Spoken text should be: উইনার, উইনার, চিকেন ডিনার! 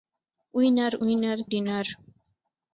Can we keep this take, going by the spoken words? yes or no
no